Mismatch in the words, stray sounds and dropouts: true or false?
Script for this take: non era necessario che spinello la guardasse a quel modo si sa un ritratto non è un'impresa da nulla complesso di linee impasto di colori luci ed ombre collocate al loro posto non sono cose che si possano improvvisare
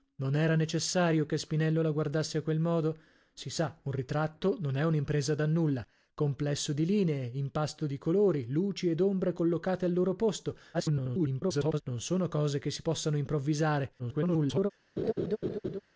true